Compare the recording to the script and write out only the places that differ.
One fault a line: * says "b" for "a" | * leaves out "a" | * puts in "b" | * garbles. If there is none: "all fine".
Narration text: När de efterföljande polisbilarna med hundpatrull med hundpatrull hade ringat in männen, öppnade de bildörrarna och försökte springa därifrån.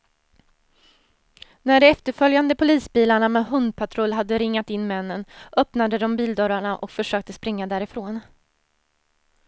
* leaves out "med hundpatrull"